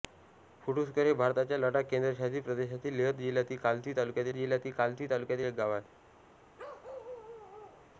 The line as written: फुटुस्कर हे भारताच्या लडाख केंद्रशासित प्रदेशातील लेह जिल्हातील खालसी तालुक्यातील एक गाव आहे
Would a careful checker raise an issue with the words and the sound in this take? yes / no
yes